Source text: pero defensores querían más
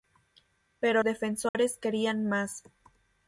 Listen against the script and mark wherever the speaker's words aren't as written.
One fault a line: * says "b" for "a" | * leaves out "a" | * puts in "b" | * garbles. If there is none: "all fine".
all fine